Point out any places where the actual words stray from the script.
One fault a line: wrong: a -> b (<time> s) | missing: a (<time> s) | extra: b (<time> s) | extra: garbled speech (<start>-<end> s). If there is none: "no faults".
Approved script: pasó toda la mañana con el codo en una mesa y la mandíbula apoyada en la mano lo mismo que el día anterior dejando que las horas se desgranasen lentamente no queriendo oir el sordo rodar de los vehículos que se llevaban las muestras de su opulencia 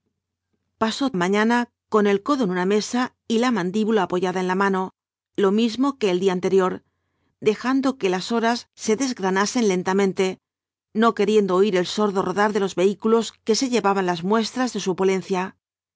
missing: toda la (1.1 s)